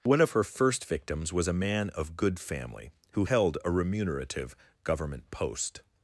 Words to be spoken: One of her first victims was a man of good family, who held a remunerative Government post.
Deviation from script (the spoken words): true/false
false